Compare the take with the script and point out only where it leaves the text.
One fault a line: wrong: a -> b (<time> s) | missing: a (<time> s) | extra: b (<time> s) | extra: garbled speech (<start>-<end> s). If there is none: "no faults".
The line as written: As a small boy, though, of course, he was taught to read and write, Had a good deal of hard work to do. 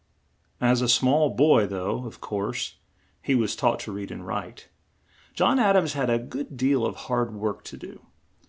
extra: John Ad ams (5.3 s)